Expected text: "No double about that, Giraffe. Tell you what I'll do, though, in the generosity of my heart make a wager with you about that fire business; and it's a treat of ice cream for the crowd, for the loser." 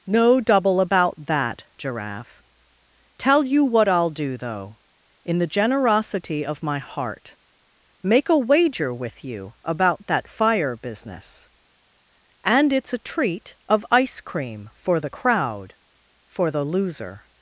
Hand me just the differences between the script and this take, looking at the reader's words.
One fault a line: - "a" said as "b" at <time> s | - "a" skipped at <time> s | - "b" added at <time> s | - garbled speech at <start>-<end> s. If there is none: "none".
none